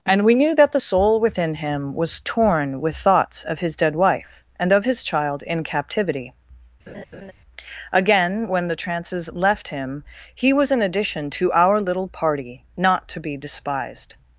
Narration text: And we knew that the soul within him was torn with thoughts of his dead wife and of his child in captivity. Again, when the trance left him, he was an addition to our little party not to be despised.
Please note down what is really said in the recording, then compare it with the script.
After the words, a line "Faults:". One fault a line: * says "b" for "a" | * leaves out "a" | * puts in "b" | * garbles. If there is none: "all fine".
And we knew that the soul within him was torn with thoughts of his dead wife and of his child in captivity. Again, when the trances left him, he was an addition to our little party not to be despised.
Faults:
* says "trances" for "trance"